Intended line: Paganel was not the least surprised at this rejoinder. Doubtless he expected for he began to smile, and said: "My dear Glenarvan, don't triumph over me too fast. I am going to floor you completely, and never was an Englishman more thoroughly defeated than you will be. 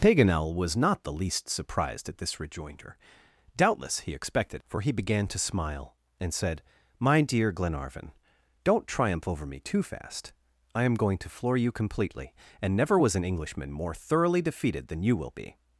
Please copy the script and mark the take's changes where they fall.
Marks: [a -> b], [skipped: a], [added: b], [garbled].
Paganel was not the least surprised at this rejoinder. Doubtless he expected for he began to smile, and said: "My dear Glenarvan, don't triumph over me too fast. I am going to floor you completely, and never was an Englishman more thoroughly defeated than you will be.